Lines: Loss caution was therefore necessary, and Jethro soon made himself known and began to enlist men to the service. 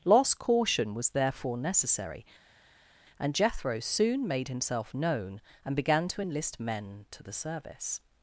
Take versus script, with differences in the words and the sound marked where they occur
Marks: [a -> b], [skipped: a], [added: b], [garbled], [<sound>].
Loss caution was therefore necessary, and Jethro soon made himself known and began to enlist men to the service.